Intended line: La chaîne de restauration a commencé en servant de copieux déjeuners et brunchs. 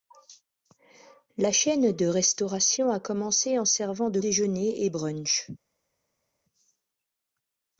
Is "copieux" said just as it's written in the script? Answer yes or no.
no